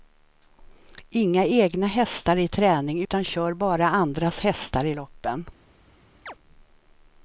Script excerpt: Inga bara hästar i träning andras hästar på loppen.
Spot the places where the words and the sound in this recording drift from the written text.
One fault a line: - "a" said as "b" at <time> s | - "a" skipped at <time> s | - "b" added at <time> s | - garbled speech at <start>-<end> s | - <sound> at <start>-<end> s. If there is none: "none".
- "bara" said as "egna" at 1.4 s
- "utan kör bara" added at 3.0 s
- "på" said as "i" at 4.8 s
- chirp at 6.3-6.3 s